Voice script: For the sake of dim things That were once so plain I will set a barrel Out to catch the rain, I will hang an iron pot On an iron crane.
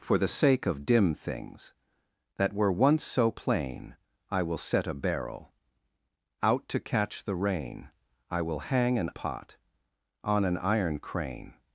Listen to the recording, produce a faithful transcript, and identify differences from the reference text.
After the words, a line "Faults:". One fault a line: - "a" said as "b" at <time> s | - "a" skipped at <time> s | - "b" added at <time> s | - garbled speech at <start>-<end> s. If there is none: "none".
For the sake of dim things That were once so plain I will set a barrel Out to catch the rain, I will hang an pot On an iron crane.
Faults:
- "iron" skipped at 9.1 s